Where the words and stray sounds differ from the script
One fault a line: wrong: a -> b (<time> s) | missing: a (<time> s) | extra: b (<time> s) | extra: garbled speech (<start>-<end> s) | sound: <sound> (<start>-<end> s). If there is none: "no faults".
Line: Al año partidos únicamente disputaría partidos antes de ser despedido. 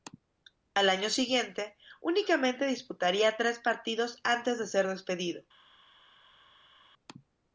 wrong: partidos -> siguiente (1.1 s)
extra: tres (3.3 s)